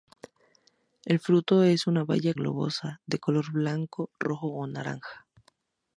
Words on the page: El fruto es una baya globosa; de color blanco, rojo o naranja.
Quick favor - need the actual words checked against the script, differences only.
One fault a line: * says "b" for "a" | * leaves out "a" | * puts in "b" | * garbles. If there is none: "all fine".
all fine